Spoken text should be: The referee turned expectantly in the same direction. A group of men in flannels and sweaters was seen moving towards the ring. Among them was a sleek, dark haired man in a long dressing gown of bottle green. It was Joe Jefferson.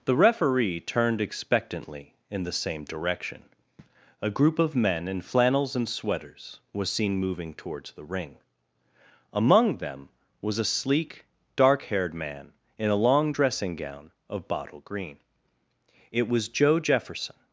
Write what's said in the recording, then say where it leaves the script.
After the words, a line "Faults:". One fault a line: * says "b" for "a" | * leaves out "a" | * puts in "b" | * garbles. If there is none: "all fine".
The referee turned expectantly in the same direction. A group of men in flannels and sweaters was seen moving towards the ring. Among them was a sleek, dark haired man in a long dressing gown of bottle green. It was Joe Jefferson.
Faults:
all fine